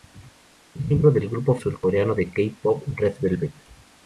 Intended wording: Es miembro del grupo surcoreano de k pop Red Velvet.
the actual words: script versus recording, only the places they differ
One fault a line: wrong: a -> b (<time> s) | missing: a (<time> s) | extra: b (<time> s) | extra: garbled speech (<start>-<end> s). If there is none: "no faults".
no faults